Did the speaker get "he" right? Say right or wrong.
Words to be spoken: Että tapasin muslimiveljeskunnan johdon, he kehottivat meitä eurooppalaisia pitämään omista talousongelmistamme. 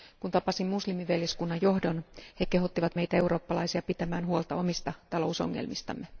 right